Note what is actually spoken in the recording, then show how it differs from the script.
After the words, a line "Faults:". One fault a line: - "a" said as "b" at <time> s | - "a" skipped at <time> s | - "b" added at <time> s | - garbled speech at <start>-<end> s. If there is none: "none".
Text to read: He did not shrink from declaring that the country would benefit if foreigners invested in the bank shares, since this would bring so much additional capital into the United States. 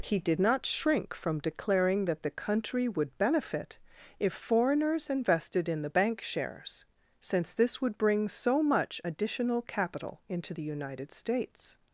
He did not shrink from declaring that the country would benefit if foreigners invested in the bank shares, since this would bring so much additional capital into the United States.
Faults:
none